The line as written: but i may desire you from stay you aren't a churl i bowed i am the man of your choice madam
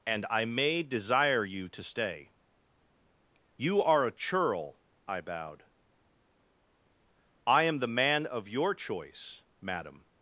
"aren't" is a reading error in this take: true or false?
true